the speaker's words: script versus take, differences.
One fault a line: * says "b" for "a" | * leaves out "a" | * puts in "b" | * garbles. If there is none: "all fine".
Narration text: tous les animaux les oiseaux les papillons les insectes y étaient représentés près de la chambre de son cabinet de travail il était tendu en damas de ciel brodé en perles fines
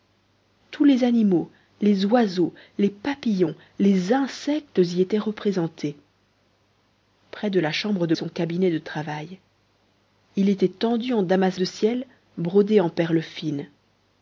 all fine